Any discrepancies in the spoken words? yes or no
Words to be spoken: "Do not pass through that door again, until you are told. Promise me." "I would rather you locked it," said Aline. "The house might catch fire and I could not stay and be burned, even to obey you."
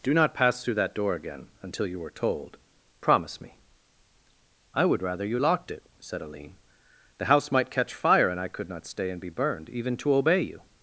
no